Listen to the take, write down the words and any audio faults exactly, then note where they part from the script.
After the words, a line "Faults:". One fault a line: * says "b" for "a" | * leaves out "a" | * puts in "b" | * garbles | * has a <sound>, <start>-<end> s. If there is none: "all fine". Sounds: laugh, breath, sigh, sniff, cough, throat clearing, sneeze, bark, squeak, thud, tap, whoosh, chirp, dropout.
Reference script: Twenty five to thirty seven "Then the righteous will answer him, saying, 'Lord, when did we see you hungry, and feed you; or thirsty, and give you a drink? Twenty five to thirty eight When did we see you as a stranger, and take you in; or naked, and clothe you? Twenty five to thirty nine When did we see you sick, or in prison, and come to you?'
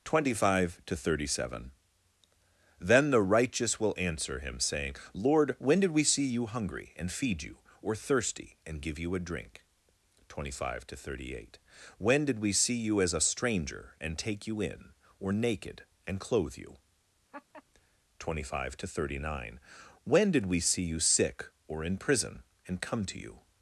Twenty five to thirty seven "Then the righteous will answer him, saying, 'Lord, when did we see you hungry, and feed you; or thirsty, and give you a drink? Twenty five to thirty eight When did we see you as a stranger, and take you in; or naked, and clothe you? Twenty five to thirty nine When did we see you sick, or in prison, and come to you?'
Faults:
* has a laugh, 17.3-17.6 s